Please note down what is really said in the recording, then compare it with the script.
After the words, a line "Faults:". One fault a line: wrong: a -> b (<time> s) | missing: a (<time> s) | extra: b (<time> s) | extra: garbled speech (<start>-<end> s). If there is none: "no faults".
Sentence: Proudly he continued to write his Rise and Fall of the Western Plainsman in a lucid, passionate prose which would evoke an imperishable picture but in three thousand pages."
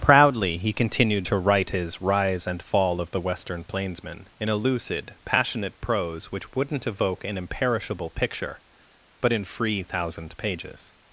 Proudly he continued to write his Rise and Fall of the Western Plainsman in a lucid, passionate prose which wouldn't evoke an imperishable picture but in free thousand pages."
Faults:
wrong: would -> wouldn't (6.5 s)
wrong: three -> free (9.4 s)